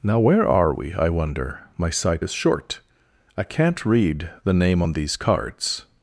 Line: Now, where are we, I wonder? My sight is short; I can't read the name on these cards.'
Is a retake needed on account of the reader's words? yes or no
no